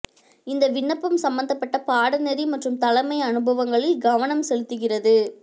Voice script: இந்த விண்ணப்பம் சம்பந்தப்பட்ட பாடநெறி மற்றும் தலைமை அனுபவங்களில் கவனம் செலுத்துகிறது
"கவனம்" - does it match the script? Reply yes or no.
yes